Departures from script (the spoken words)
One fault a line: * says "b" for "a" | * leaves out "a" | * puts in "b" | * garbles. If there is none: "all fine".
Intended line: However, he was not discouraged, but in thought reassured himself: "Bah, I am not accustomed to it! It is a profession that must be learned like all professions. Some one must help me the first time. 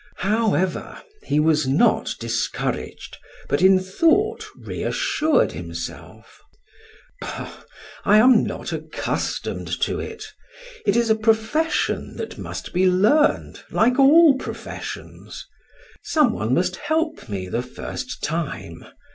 all fine